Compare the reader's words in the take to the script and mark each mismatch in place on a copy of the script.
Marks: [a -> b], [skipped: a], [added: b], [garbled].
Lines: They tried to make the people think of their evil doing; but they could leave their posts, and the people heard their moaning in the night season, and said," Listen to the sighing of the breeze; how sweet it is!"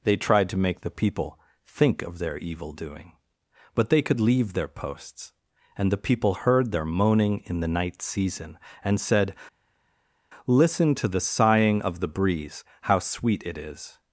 They tried to make the people think of their evil doing; but they could leave their posts, and the people heard their moaning in the night season, and said," Listen to the sighing of the breeze; how sweet it is!"